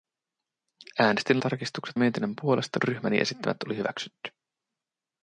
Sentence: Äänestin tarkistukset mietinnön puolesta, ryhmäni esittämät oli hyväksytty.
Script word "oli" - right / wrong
right